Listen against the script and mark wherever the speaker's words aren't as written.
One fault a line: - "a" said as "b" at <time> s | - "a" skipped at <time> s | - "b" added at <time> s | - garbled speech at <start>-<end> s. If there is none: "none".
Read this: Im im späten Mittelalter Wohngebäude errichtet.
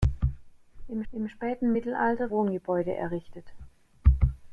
none